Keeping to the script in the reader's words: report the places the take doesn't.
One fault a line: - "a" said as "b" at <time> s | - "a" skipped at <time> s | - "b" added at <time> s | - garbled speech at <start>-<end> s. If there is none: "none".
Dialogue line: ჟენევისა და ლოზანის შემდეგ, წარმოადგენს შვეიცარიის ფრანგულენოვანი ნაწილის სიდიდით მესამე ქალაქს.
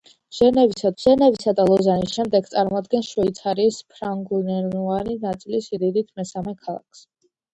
- "ჟენევისა" added at 1.0 s